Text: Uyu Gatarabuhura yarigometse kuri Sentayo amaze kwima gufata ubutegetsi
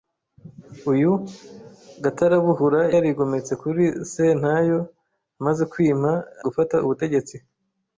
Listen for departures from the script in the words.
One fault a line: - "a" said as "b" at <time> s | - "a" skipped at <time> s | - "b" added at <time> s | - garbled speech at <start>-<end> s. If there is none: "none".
none